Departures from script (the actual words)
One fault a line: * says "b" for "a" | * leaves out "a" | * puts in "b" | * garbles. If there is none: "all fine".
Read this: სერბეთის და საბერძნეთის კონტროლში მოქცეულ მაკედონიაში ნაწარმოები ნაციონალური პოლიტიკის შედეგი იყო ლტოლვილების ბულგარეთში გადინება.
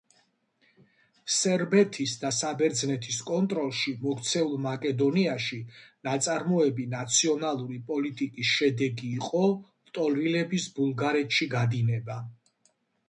all fine